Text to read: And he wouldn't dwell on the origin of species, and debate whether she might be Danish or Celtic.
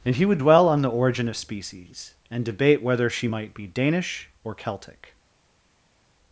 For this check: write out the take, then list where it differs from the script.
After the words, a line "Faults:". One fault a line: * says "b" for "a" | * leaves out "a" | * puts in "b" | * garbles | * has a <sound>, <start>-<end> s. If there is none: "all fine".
And he would dwell on the origin of species, and debate whether she might be Danish or Celtic.
Faults:
* says "would" for "wouldn't"